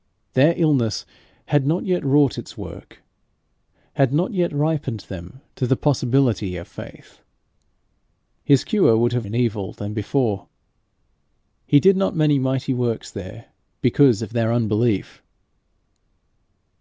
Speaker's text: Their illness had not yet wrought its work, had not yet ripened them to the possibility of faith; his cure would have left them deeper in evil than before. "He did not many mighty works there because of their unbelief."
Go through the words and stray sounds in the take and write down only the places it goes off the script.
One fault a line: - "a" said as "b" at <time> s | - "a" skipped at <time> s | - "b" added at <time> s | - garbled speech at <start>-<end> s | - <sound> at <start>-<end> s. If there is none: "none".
- "left them deeper" skipped at 9.3 s